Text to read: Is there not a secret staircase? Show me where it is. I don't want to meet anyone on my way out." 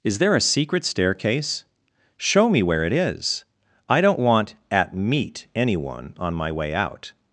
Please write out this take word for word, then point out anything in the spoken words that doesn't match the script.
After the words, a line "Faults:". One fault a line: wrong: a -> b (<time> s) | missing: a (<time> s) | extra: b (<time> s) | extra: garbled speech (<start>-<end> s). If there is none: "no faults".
Is there a secret staircase? Show me where it is. I don't want at meet anyone on my way out."
Faults:
missing: not (0.3 s)
wrong: to -> at (4.7 s)